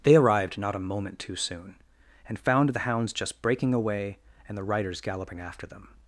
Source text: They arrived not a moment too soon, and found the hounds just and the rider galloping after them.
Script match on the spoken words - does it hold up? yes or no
no